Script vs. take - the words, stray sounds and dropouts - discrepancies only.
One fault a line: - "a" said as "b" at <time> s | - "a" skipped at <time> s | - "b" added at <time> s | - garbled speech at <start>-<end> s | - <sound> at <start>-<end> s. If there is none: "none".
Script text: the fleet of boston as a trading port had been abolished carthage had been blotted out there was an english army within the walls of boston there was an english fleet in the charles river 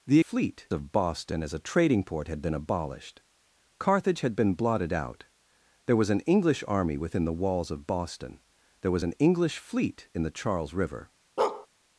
- bark at 11.4-11.7 s